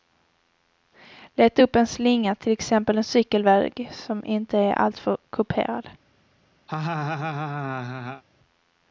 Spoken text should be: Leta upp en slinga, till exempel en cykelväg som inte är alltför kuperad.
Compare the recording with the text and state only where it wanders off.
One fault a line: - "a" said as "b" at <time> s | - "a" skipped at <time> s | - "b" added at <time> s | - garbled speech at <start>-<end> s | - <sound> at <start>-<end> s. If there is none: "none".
- laugh at 6.7-8.2 s